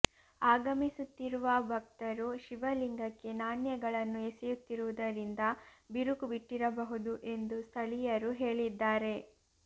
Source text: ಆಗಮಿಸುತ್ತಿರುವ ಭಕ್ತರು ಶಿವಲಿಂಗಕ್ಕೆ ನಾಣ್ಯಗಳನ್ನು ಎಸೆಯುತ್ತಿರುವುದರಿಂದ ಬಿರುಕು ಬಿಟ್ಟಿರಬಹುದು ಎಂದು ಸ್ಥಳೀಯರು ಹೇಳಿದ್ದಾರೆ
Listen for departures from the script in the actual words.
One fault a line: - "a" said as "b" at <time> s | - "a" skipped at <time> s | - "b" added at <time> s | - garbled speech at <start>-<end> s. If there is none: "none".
none